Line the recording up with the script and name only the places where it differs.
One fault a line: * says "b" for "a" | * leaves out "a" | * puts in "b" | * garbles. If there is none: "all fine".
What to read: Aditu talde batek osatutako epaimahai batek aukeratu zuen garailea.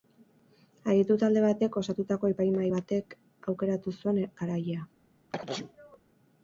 all fine